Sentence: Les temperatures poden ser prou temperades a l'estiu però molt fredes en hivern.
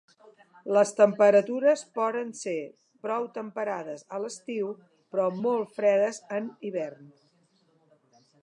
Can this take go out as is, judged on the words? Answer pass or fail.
pass